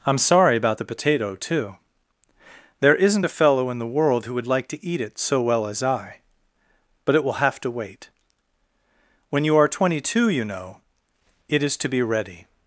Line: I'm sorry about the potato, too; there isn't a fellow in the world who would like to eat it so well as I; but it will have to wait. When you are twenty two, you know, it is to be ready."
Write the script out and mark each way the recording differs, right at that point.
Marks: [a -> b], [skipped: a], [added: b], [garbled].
I'm sorry about the potato, too; there isn't a fellow in the world who would like to eat it so well as I; but it will have to wait. When you are twenty two, you know, it is to be ready."